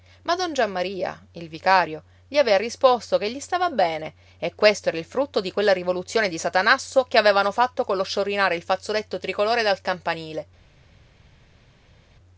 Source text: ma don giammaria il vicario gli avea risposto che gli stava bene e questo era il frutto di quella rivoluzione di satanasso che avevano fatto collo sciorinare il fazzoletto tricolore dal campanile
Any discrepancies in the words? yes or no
no